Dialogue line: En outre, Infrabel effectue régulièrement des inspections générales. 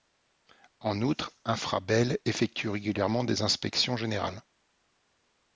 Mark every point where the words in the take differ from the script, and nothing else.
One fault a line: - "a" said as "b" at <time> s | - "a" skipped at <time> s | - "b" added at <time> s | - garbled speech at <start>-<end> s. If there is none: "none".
none